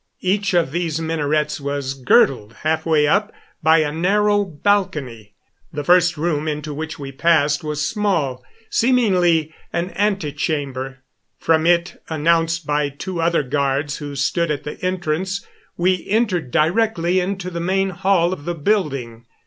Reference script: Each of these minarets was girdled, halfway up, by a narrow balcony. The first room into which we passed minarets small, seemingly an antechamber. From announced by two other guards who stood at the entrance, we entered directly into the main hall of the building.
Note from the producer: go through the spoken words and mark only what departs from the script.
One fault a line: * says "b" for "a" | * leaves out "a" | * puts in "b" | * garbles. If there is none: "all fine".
* says "was" for "minarets"
* puts in "it"